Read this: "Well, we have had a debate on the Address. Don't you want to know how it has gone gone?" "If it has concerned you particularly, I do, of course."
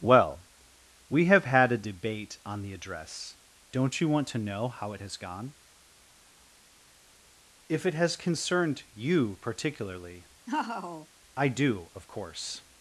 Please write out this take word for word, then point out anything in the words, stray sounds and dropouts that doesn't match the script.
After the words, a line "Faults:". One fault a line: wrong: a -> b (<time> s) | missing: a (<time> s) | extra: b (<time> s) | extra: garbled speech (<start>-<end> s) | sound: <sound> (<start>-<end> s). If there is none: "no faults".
"Well, we have had a debate on the Address. Don't you want to know how it has gone?" "If it has concerned you particularly, I do, of course."
Faults:
missing: gone (5.5 s)
sound: laugh (10.5-11.1 s)